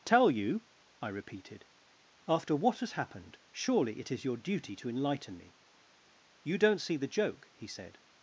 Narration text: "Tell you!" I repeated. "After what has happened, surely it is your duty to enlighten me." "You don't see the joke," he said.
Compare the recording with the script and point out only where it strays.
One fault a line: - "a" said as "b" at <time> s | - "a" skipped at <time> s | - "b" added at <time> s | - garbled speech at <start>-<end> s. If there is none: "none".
none